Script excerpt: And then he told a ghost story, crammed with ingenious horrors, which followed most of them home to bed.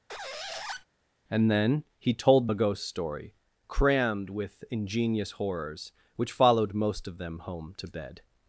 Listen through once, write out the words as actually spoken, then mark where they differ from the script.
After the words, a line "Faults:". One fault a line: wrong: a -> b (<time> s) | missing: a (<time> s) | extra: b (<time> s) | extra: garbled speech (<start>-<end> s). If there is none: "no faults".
And then he told a ghost story, crammed with ingenious horrors, which followed most of them home to bed.
Faults:
no faults